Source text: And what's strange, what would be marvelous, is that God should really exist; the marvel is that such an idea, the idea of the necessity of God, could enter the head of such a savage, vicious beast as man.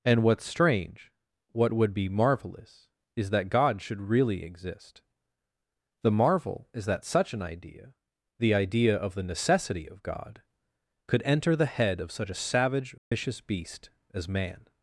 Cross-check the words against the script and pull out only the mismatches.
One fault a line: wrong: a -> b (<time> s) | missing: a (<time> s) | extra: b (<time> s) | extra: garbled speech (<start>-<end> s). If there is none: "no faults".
no faults